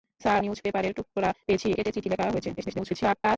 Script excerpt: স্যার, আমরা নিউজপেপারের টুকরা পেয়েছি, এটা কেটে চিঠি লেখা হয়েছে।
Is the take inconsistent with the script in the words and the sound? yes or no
yes